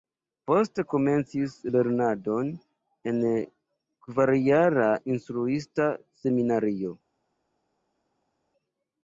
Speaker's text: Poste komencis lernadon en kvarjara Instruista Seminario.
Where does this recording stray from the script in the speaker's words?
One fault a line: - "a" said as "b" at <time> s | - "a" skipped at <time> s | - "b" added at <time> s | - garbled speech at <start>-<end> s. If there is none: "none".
none